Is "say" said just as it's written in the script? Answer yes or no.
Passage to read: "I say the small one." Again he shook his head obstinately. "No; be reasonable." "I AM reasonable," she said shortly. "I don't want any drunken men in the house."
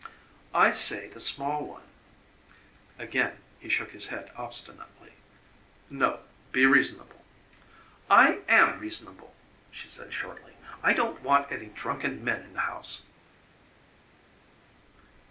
yes